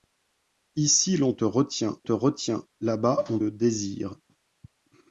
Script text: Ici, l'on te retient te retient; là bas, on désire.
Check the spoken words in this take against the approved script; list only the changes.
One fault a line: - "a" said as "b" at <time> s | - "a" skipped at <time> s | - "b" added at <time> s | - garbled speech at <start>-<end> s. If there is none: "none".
none